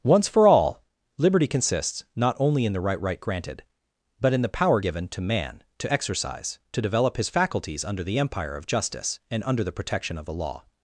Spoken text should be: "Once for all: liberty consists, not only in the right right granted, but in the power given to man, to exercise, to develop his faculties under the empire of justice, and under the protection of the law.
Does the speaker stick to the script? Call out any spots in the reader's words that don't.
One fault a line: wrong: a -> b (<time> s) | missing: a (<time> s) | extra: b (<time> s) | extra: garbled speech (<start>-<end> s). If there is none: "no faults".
no faults